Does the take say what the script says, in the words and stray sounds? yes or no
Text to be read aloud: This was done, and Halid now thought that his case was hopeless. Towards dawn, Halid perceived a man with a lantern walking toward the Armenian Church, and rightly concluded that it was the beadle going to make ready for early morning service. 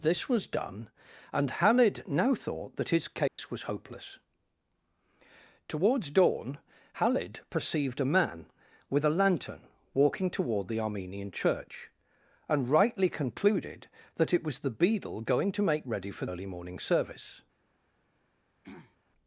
no